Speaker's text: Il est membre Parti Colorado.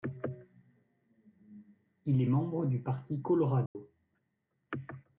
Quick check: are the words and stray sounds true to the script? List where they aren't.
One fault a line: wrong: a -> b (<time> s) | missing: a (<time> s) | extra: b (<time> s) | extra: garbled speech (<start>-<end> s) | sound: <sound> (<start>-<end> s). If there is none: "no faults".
extra: du (2.7 s)
sound: dropout (3.7-3.8 s)